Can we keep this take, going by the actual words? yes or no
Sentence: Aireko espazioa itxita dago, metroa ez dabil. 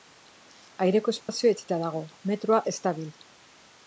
yes